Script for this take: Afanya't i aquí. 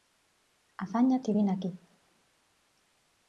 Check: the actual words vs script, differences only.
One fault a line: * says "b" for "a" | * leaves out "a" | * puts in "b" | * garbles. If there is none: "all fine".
* puts in "vine"